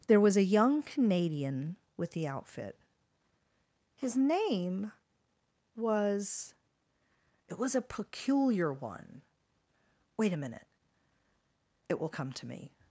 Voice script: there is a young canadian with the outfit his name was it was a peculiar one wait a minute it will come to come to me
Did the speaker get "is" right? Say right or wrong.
wrong